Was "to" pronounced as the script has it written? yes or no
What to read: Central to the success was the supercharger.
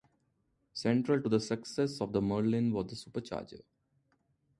yes